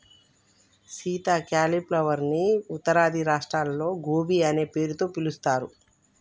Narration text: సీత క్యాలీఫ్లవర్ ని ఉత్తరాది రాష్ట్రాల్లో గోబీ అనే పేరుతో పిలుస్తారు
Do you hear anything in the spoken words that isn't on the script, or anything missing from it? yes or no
no